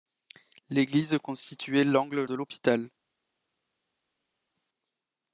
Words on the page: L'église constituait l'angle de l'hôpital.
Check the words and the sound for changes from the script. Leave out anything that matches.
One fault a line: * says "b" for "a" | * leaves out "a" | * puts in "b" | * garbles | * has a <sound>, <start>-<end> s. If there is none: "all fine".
all fine